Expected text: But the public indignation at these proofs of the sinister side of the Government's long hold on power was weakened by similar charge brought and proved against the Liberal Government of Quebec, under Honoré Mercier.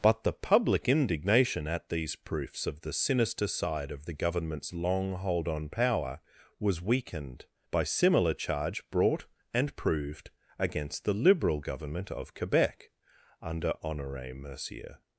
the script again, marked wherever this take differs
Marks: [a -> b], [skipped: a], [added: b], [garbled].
But the public indignation at these proofs of the sinister side of the Government's long hold on power was weakened by similar charge brought and proved against the Liberal Government of Quebec, under Honoré Mercier.